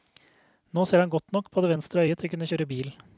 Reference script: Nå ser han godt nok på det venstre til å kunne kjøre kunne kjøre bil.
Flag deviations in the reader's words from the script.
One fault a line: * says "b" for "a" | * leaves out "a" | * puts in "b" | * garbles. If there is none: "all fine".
* puts in "øyet"
* leaves out "kunne kjøre"